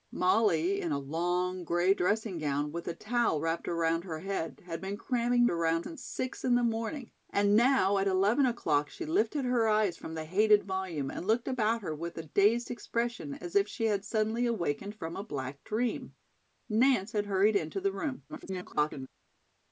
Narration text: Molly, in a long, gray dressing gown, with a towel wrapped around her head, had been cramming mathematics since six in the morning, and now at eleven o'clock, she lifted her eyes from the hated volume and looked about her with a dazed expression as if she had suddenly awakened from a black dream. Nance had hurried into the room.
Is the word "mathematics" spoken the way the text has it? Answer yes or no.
no